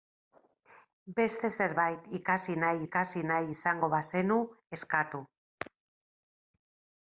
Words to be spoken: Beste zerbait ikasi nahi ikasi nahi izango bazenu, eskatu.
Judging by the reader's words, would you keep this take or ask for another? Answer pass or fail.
pass